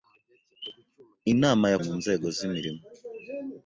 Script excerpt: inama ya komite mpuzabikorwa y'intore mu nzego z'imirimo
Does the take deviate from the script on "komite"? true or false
true